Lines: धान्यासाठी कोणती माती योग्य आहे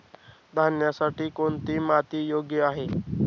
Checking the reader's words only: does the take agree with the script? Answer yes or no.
yes